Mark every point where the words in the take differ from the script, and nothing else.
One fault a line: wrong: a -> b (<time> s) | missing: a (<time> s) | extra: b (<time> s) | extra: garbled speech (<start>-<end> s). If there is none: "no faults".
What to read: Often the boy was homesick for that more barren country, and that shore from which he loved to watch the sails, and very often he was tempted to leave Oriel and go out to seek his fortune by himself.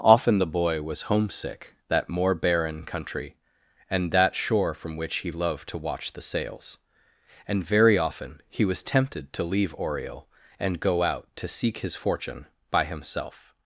missing: for (1.8 s)